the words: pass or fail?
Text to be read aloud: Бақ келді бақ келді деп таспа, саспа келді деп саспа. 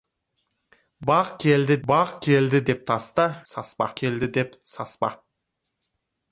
pass